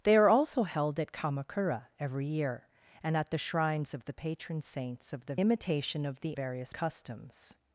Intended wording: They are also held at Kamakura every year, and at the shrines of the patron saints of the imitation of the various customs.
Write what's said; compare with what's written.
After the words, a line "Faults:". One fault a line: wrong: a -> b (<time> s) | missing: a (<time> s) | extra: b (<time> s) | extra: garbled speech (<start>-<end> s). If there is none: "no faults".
They are also held at Kamakura every year, and at the shrines of the patron saints of the imitation of the various customs.
Faults:
no faults